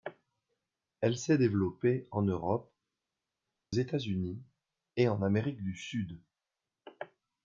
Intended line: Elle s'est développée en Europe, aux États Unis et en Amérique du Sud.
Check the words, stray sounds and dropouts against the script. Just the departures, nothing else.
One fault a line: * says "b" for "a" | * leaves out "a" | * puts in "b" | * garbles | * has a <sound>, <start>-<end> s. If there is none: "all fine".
* leaves out "aux"